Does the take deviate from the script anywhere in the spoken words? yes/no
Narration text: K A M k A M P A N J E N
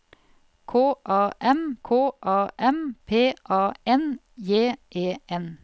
no